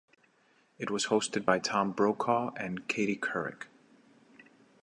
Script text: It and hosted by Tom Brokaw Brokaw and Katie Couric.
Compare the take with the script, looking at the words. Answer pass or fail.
fail